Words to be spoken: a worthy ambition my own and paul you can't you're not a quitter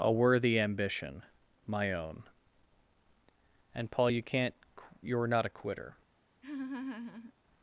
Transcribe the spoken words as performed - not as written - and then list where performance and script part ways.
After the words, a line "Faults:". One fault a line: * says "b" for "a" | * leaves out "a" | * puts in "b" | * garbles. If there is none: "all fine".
a worthy ambition my own and paul you can't you're not a quitter
Faults:
all fine